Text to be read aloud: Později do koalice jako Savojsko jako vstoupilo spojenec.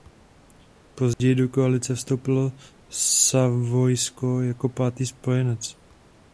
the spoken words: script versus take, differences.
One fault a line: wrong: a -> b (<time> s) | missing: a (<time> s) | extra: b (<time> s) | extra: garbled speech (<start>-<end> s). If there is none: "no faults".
wrong: jako -> vstoupilo (1.9 s)
wrong: vstoupilo -> pátý (4.7 s)